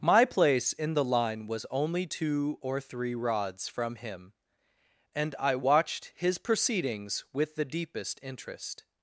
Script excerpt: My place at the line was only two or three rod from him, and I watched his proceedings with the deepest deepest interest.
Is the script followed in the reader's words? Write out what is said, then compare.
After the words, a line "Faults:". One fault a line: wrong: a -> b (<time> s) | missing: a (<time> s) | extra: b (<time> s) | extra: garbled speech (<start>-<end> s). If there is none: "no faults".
My place in the line was only two or three rods from him, and I watched his proceedings with the deepest interest.
Faults:
wrong: at -> in (0.7 s)
wrong: rod -> rods (3.2 s)
missing: deepest (8.2 s)